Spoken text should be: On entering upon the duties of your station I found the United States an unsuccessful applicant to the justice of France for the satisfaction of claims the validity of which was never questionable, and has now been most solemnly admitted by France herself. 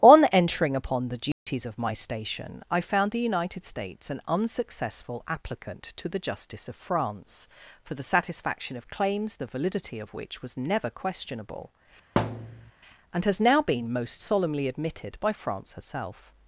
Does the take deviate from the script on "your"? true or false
true